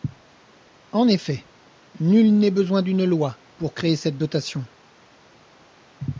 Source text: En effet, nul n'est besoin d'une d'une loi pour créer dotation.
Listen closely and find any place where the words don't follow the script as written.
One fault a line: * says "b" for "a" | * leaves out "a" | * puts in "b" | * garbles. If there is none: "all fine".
* leaves out "d'une"
* puts in "cette"